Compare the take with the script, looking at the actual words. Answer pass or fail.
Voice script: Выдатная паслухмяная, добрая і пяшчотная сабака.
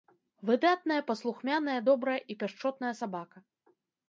pass